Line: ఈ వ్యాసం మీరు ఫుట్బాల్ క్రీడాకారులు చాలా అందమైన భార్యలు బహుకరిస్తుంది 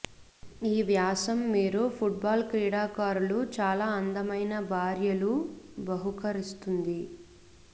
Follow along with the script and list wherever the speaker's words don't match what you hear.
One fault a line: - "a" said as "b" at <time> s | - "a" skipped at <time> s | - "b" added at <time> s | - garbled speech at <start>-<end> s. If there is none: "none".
none